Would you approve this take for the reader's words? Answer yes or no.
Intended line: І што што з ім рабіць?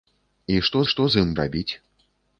yes